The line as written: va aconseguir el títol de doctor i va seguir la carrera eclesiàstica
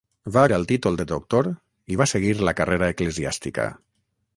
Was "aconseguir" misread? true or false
true